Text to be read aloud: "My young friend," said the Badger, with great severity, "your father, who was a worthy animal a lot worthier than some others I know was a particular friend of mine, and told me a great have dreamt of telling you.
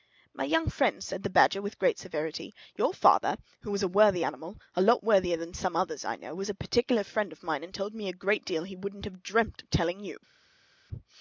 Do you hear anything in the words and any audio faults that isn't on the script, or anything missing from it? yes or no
yes